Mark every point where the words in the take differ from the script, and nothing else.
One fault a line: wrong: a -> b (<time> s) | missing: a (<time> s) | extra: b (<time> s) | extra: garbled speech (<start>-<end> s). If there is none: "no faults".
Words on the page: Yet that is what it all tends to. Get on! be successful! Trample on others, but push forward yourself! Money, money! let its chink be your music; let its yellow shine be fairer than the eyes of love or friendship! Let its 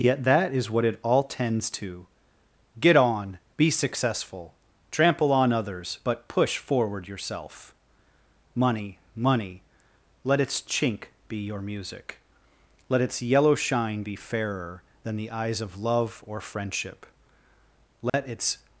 no faults